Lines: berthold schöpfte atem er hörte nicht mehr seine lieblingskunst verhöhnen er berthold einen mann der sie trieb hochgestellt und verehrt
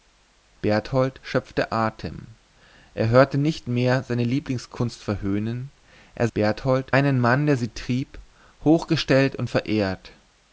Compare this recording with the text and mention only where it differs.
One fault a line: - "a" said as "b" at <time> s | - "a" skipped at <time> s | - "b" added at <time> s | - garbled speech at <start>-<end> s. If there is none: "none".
none